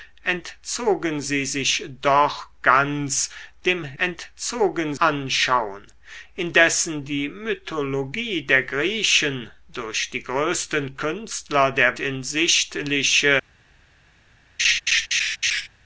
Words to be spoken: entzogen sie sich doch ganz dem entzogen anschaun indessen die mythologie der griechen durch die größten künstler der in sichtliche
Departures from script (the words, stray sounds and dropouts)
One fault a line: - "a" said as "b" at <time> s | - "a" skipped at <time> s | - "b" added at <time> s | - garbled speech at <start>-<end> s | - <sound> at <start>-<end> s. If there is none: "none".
- laugh at 14.6-15.7 s